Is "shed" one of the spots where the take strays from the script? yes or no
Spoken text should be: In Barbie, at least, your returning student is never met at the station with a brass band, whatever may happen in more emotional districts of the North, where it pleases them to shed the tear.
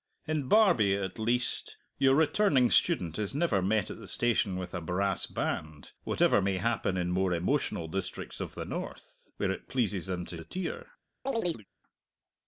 yes